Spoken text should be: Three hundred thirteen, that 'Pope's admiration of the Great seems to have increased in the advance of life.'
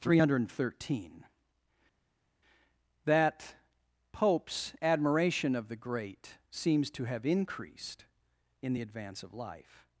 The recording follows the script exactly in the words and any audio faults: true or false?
true